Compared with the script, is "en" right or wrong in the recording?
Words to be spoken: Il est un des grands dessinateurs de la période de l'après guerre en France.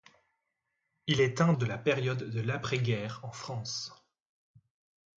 right